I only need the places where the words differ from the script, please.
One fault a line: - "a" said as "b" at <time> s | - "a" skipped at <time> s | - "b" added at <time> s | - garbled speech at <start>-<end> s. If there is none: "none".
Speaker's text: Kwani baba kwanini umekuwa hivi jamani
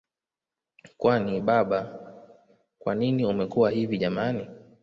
none